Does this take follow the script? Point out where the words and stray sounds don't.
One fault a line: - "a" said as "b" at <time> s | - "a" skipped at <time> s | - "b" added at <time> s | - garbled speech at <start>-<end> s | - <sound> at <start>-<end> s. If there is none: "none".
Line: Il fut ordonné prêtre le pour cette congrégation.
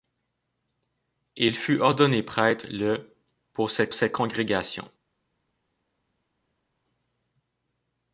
- "cette" added at 3.9 s